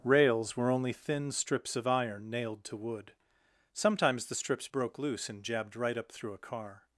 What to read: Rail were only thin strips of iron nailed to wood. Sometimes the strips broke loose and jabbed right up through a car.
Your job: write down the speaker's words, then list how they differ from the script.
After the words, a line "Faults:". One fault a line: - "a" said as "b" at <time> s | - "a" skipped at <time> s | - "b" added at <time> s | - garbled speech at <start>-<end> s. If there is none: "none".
Rails were only thin strips of iron nailed to wood. Sometimes the strips broke loose and jabbed right up through a car.
Faults:
- "Rail" said as "Rails" at 0.0 s